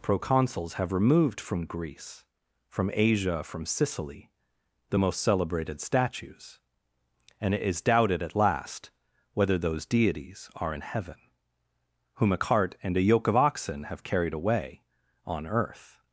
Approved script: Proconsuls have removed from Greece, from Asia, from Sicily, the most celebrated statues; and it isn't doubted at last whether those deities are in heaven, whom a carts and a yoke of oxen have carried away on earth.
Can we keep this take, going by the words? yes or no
no